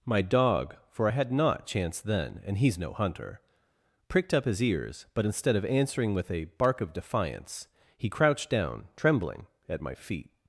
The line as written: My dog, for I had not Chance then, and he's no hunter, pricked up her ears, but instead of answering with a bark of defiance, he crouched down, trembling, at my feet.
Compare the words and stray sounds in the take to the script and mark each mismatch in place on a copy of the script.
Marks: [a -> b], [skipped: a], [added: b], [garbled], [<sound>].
My dog, for I had not Chance then, and he's no hunter, pricked up [her -> his] ears, but instead of answering with a bark of defiance, he crouched down, trembling, at my feet.